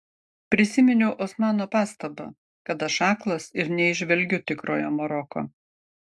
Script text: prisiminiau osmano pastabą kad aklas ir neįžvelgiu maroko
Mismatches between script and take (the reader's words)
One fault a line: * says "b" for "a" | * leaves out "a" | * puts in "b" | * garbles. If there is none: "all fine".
* puts in "aš"
* puts in "tikrojo"